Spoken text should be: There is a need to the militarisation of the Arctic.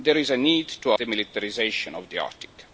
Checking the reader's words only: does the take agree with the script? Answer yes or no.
yes